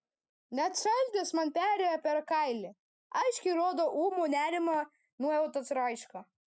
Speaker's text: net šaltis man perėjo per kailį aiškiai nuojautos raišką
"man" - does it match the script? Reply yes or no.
yes